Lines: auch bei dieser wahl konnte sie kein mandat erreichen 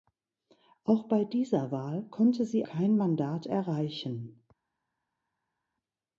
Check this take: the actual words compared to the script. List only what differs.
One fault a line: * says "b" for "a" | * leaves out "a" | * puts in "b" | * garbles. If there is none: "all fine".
all fine